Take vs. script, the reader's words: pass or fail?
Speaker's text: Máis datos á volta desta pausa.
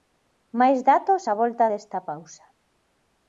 pass